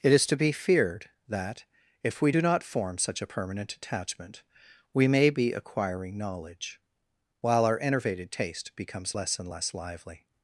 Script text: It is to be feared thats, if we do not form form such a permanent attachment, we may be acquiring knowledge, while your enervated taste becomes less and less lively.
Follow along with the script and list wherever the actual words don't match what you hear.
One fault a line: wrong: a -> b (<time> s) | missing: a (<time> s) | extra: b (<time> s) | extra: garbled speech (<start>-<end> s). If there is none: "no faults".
wrong: thats -> that (1.3 s)
missing: form (3.0 s)
wrong: your -> our (7.6 s)